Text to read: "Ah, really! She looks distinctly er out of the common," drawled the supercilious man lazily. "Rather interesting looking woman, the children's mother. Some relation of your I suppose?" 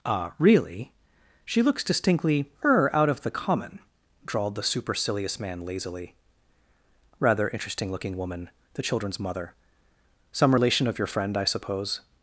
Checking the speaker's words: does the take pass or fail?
fail